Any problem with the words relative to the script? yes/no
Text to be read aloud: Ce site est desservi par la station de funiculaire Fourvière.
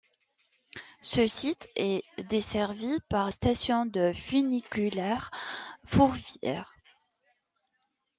yes